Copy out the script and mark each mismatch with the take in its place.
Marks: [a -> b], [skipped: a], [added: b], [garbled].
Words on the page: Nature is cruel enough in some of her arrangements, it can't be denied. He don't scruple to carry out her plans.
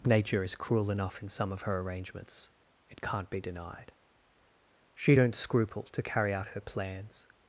Nature is cruel enough in some of her arrangements, it can't be denied. [He -> She] don't scruple to carry out her plans.